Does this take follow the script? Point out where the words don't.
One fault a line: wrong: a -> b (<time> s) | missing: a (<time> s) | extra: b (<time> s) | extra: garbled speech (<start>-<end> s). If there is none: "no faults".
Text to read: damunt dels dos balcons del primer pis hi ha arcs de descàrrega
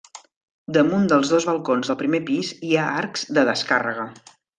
no faults